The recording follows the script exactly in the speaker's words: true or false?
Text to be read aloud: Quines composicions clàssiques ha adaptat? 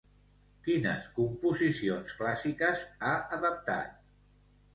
true